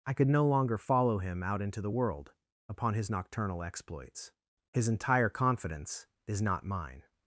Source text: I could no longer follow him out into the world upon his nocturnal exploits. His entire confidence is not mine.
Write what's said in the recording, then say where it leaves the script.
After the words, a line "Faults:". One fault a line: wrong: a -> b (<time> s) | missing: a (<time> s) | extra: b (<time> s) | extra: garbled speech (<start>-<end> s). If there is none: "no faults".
I could no longer follow him out into the world upon his nocturnal exploits. His entire confidence is not mine.
Faults:
no faults